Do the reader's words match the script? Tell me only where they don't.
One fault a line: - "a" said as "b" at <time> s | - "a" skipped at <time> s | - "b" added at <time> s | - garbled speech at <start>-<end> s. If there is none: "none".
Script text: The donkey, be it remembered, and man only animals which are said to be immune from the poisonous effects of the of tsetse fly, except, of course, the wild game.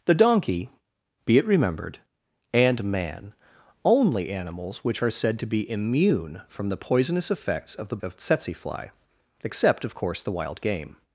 none